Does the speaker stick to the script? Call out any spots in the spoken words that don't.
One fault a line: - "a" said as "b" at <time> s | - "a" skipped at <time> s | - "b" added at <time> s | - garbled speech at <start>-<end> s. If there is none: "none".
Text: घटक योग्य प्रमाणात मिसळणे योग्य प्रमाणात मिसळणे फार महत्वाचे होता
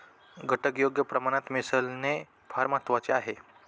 - "योग्य प्रमाणात मिसळणे" skipped at 2.2 s
- "होता" said as "आहे" at 3.1 s